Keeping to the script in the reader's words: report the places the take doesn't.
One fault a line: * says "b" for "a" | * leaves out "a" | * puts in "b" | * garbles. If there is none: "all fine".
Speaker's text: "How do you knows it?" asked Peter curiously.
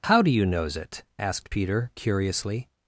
all fine